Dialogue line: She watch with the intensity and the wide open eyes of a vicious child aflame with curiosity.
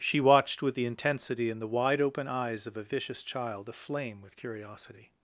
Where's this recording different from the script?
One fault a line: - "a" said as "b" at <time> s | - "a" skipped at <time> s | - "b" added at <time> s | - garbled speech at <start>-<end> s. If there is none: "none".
- "watch" said as "watched" at 0.2 s